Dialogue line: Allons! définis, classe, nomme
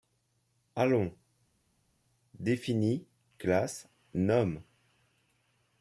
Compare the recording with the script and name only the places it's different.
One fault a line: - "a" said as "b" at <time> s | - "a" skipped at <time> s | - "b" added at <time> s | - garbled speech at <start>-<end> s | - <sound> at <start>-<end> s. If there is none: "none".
none